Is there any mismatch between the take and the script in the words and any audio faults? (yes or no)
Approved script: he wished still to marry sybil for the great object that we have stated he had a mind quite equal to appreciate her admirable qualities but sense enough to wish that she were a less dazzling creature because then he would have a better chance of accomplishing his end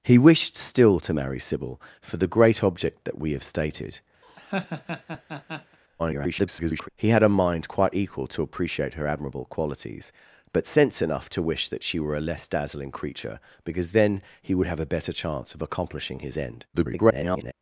yes